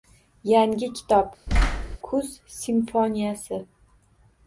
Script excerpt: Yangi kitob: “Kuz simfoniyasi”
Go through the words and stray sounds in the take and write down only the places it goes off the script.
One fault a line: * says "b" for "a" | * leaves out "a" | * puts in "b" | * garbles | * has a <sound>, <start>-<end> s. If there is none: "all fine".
* has a thud, 1.5-2.0 s